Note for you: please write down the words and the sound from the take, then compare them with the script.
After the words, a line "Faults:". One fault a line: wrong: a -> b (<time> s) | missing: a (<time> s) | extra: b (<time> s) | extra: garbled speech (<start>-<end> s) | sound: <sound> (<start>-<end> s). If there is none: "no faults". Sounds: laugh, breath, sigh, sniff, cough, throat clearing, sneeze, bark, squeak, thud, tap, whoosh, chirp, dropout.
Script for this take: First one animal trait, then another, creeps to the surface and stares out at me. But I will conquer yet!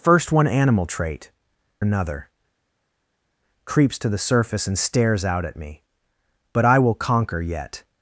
First one animal trait, another, creeps to the surface and stares out at me. But I will conquer yet!
Faults:
missing: then (1.3 s)